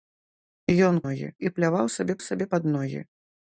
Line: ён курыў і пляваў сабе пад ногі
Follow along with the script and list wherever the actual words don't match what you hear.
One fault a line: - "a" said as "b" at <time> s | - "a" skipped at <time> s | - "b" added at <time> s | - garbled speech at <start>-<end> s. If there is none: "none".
- "курыў" said as "ногі" at 1.1 s
- "сабе" added at 2.3 s